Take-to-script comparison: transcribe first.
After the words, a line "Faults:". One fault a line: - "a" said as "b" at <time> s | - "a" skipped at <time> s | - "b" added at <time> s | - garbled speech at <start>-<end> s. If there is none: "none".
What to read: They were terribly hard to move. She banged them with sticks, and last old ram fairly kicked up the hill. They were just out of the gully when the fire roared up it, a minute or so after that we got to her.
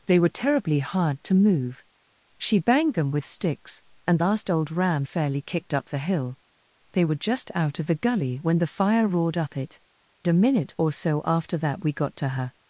They were terribly hard to move. She banged them with sticks, and last old ram fairly kicked up the hill. They were just out of the gully when the fire roared up it, a minute or so after that we got to her.
Faults:
none